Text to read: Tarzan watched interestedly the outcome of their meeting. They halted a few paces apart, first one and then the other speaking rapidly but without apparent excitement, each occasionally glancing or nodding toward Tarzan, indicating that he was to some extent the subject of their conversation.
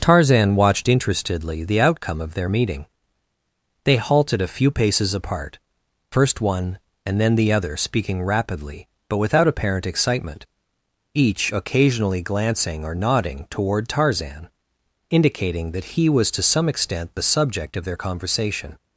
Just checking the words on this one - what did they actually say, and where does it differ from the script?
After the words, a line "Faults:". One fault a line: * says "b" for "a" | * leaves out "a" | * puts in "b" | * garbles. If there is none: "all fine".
Tarzan watched interestedly the outcome of their meeting. They halted a few paces apart, first one and then the other speaking rapidly but without apparent excitement, each occasionally glancing or nodding toward Tarzan, indicating that he was to some extent the subject of their conversation.
Faults:
all fine